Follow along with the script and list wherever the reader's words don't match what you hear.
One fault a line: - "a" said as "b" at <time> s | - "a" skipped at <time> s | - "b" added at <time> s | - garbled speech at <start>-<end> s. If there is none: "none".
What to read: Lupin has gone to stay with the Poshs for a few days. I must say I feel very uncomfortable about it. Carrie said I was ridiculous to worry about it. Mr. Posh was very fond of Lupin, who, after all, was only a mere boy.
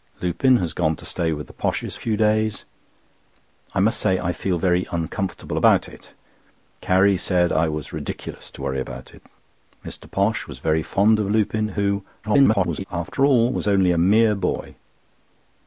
- "for" skipped at 1.9 s
- garbled speech at 12.2-12.8 s